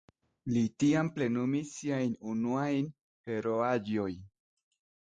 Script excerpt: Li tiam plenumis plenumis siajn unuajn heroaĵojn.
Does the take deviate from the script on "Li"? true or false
false